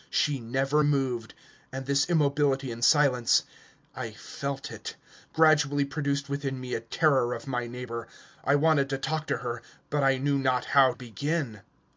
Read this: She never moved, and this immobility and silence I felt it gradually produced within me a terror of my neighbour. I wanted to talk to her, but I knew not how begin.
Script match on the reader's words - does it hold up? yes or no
yes